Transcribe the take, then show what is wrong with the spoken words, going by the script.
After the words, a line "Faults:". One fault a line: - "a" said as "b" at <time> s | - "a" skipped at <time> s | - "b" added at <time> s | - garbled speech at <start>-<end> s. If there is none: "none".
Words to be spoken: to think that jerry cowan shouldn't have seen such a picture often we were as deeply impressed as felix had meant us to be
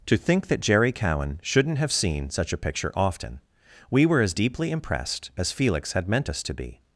to think that jerry cowan shouldn't have seen such a picture often we were as deeply impressed as felix had meant us to be
Faults:
none